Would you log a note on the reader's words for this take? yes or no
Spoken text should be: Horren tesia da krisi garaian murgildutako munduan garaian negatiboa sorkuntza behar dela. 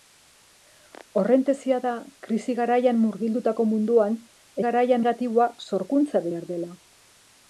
no